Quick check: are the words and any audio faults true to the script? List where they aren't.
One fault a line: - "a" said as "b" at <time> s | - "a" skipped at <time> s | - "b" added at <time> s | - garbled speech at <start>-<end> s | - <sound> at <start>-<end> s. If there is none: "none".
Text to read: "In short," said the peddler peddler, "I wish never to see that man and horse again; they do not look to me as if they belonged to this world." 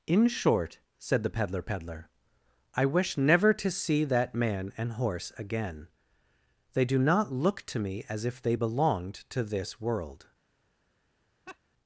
- laugh at 11.5-11.6 s